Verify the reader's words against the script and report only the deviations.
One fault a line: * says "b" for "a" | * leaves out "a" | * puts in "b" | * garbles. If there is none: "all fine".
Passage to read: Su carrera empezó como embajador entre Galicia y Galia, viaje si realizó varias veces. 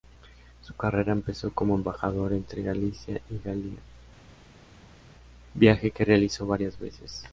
* says "que" for "si"